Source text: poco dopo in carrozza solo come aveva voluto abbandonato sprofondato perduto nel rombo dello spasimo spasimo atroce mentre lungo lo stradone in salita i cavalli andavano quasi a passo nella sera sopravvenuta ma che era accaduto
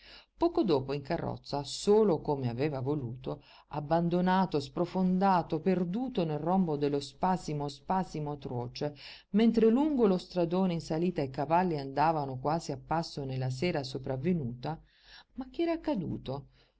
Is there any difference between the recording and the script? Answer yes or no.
no